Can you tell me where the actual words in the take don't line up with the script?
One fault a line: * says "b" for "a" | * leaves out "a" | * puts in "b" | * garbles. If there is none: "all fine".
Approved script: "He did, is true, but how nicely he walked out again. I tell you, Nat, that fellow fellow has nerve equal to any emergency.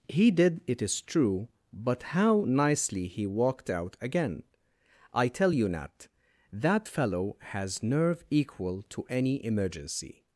* puts in "it"
* leaves out "fellow"